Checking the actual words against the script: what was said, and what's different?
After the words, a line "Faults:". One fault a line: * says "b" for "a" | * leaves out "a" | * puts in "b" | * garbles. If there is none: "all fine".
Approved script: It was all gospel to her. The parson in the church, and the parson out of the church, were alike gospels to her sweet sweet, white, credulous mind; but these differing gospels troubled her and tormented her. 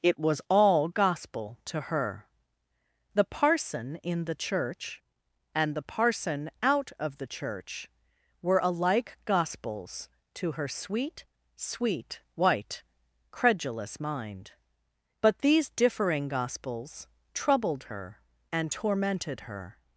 It was all gospel to her. The parson in the church, and the parson out of the church, were alike gospels to her sweet sweet, white, credulous mind; but these differing gospels troubled her and tormented her.
Faults:
all fine